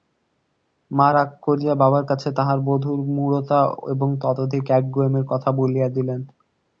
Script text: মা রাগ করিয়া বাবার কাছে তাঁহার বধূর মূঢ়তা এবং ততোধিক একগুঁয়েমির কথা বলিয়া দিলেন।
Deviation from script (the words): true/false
false